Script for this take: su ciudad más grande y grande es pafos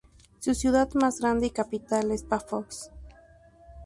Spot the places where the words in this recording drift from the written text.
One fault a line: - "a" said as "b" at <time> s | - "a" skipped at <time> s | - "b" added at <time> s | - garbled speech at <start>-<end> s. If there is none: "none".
- "grande" said as "capital" at 1.5 s